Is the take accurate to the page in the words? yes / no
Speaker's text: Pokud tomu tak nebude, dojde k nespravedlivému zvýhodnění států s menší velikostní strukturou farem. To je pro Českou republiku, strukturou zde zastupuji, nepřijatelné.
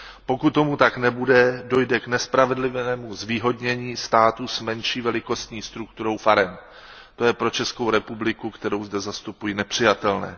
no